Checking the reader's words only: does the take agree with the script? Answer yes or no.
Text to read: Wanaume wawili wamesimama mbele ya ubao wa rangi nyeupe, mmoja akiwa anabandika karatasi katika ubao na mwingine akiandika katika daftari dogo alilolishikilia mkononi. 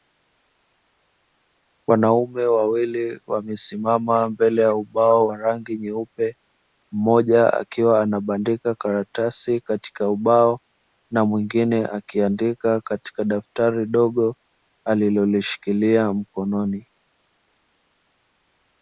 yes